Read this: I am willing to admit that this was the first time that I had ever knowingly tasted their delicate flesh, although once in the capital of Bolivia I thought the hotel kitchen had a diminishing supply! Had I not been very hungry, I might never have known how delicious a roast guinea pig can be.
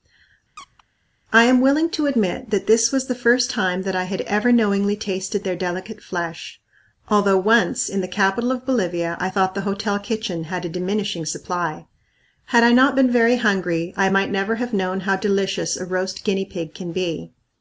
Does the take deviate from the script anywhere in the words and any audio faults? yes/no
yes